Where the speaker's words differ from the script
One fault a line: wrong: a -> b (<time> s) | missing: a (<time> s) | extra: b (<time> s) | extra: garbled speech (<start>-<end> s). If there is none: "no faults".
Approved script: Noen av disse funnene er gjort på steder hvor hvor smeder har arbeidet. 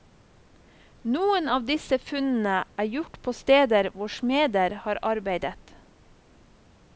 missing: hvor (4.1 s)